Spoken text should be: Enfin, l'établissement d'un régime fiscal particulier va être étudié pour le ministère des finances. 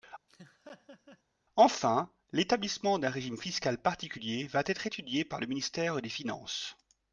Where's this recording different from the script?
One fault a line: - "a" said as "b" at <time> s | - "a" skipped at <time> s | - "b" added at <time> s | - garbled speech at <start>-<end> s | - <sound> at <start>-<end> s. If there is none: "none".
- laugh at 0.3-1.2 s
- "pour" said as "par" at 5.2 s